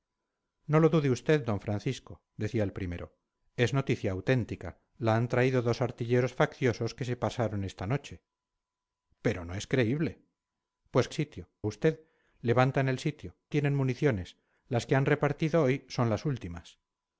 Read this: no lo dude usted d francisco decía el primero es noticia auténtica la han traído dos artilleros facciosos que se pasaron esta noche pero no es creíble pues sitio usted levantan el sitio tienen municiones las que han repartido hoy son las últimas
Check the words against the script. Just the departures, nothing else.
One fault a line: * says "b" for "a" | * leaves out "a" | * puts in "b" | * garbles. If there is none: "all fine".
all fine